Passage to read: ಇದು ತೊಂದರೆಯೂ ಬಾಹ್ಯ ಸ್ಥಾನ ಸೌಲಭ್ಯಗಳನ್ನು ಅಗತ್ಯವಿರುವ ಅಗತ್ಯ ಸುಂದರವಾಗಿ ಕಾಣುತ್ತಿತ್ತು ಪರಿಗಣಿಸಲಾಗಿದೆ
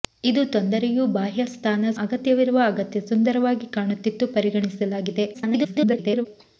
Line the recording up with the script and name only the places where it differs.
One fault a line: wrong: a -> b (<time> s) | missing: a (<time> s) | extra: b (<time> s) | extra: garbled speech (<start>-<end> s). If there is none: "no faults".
missing: ಸೌಲಭ್ಯಗಳನ್ನು (1.9 s)
extra: garbled speech (5.3-6.3 s)